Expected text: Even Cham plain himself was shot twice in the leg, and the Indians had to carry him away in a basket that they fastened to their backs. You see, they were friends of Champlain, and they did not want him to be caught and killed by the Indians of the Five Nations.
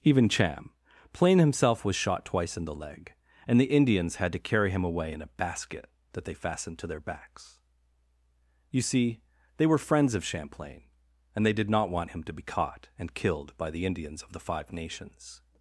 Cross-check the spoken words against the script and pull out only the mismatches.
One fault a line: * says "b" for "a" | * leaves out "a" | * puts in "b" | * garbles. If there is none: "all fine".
all fine